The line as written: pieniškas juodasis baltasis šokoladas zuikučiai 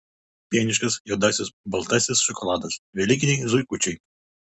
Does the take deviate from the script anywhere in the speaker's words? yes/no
yes